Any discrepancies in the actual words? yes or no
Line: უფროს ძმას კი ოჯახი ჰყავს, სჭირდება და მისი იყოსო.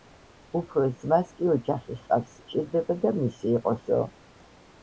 no